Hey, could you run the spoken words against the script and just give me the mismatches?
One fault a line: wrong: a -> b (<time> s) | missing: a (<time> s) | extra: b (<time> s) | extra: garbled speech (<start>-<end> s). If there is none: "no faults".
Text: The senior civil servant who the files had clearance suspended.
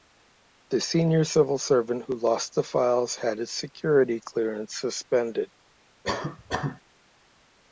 extra: lost (2.2 s)
extra: his security (3.4 s)